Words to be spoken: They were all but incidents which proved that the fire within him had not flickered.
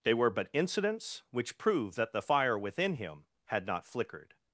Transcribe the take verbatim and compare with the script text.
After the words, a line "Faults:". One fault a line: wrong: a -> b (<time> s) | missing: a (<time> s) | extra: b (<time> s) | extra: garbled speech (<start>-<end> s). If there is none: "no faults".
They were but incidents which proved that the fire within him had not flickered.
Faults:
missing: all (0.3 s)